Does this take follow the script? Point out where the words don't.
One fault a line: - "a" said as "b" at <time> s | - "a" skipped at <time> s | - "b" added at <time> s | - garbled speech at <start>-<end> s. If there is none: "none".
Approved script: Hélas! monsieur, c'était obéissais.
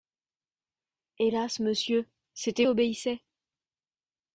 none